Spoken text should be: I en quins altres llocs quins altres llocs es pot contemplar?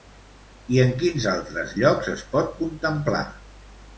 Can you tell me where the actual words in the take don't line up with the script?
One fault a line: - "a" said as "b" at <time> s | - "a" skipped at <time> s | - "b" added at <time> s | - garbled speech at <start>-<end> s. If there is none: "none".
- "quins altres llocs" skipped at 2.1 s